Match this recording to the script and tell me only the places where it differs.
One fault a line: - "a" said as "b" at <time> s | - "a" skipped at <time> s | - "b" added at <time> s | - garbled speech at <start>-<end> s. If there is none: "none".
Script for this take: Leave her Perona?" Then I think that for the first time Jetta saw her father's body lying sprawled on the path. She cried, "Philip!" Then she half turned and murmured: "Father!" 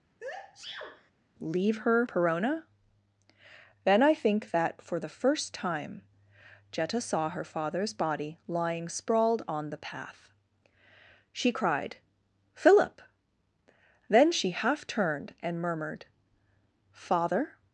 none